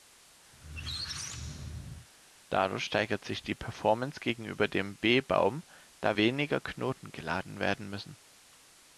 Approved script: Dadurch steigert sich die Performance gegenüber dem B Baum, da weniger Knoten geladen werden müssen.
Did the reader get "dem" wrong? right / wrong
right